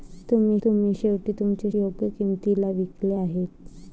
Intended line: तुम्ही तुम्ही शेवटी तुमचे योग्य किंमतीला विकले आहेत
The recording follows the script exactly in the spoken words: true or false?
true